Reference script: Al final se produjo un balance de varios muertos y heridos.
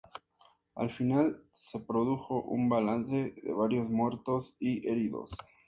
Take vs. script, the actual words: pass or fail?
pass